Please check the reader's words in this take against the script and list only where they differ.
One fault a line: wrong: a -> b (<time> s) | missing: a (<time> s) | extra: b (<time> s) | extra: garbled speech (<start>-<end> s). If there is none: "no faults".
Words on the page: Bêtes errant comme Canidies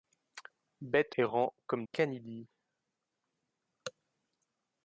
no faults